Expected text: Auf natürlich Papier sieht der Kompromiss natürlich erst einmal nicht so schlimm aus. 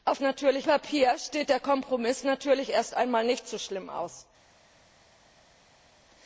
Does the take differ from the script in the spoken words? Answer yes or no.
no